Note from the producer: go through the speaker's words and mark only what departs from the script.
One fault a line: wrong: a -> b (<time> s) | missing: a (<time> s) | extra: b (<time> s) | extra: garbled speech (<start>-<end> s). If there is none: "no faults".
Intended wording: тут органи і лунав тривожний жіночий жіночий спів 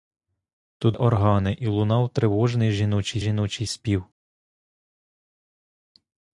no faults